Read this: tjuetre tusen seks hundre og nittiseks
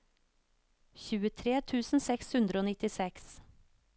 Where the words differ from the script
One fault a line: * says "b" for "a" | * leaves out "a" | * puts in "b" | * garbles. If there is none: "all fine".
all fine